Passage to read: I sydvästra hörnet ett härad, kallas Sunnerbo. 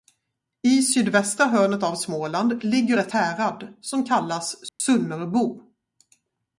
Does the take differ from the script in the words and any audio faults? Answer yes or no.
yes